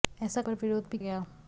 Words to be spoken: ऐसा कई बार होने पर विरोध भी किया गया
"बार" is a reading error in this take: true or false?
true